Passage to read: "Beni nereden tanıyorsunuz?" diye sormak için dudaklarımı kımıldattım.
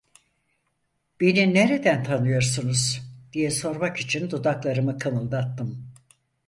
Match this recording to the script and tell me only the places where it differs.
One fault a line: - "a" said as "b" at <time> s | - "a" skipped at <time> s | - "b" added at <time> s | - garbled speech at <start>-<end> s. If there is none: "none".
none